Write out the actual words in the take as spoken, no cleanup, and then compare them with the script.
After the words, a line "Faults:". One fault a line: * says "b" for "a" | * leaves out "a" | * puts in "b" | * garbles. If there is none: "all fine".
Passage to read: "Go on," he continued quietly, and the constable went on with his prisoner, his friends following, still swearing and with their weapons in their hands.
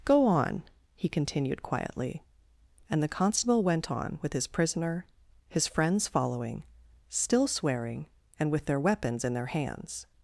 "Go on," he continued quietly, and the constable went on with his prisoner, his friends following, still swearing and with their weapons in their hands.
Faults:
all fine